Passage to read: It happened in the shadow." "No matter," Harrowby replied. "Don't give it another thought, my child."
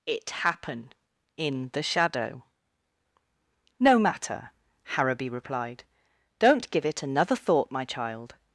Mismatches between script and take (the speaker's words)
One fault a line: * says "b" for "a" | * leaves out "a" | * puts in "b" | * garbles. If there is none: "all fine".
* says "happen" for "happened"